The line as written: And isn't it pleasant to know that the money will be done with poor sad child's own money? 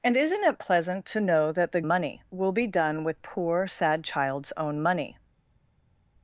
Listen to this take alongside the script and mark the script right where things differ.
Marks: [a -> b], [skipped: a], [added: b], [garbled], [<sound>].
And isn't it pleasant to know that the money will be done with poor sad child's own money?